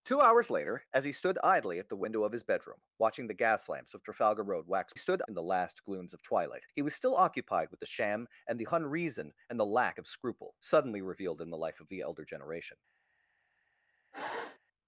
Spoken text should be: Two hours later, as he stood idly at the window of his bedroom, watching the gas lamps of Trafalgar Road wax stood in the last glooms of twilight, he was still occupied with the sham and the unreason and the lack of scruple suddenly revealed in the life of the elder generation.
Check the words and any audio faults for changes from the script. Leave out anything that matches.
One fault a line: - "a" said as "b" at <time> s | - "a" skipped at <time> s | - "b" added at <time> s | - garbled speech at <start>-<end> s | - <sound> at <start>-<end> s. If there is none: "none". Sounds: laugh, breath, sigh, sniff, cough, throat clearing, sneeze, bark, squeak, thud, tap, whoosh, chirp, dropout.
- sniff at 14.1-14.6 s